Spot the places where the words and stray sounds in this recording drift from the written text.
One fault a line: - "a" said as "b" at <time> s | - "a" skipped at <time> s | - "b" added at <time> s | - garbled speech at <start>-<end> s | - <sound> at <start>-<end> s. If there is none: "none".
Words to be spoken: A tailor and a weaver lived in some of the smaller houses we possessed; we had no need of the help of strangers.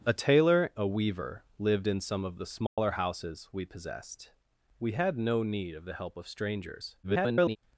- "and" skipped at 0.7 s
- dropout at 2.7-2.8 s
- garbled speech at 7.0-7.6 s